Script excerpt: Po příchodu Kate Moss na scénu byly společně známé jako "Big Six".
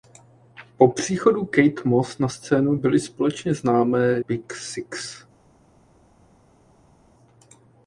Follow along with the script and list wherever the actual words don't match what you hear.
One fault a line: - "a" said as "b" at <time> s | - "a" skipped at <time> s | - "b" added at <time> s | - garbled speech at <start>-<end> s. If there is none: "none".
- "jako" skipped at 4.2 s